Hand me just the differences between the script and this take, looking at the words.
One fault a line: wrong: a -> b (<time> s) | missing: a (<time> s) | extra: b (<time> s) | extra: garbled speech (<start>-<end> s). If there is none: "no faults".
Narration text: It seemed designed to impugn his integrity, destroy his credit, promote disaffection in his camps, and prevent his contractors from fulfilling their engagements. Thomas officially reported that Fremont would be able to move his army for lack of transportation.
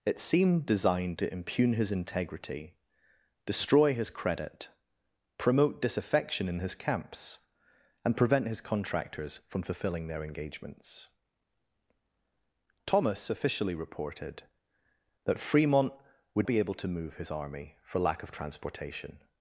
no faults